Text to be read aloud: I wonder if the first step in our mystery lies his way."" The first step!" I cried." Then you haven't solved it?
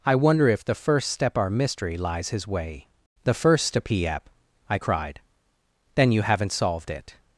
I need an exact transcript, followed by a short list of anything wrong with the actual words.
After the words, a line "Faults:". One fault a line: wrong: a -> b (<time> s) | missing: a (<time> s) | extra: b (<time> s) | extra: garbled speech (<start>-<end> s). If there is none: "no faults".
I wonder if the first step our mystery lies his way."" The first step!" I cried." Then you haven't solved it?
Faults:
missing: in (1.4 s)